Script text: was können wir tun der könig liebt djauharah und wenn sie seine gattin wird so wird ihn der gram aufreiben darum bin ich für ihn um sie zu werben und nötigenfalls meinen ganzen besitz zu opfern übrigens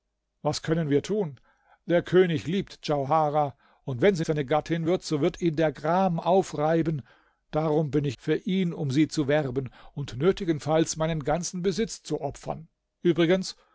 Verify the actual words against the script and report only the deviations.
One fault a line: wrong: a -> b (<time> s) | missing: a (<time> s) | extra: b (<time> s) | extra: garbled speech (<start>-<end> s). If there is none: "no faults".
no faults